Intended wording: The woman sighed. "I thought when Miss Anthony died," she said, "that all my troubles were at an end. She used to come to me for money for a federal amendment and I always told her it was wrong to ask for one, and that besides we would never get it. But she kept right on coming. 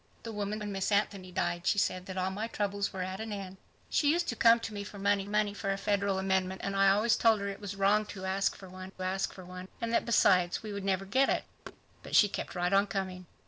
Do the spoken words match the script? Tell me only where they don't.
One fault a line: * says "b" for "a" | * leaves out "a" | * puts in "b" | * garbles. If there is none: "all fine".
* leaves out "sighed I thought"
* puts in "money"
* puts in "ask for one"